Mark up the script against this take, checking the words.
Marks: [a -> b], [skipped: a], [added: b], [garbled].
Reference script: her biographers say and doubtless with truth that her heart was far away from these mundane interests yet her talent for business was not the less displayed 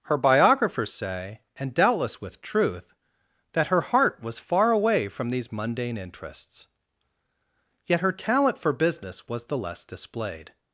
her biographers say and doubtless with truth that her heart was far away from these mundane interests yet her talent for business was [skipped: not] the less displayed